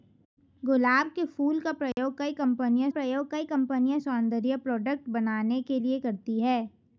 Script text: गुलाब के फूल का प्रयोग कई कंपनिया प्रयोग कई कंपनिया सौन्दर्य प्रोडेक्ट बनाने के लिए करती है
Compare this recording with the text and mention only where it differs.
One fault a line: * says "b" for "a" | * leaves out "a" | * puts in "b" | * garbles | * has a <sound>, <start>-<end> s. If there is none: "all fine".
* has a dropout, 1.9-2.0 s